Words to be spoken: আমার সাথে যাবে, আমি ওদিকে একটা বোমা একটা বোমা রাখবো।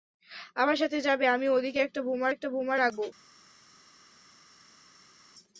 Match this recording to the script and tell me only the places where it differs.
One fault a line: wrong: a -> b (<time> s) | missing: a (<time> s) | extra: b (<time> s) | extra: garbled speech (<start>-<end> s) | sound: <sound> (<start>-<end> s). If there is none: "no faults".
no faults